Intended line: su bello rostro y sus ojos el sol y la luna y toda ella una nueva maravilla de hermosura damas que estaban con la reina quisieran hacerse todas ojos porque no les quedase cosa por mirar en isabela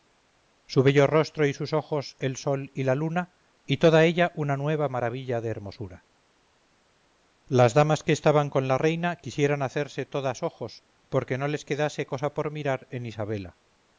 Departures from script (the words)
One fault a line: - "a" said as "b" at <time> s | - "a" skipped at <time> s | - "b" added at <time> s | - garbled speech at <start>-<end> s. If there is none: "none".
- "las" added at 7.5 s